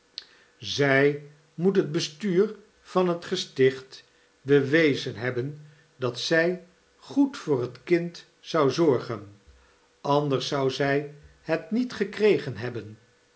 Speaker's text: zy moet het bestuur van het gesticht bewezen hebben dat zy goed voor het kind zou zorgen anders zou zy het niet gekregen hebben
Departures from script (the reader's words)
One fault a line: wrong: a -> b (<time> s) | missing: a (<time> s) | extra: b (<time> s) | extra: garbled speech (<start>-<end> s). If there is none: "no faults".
no faults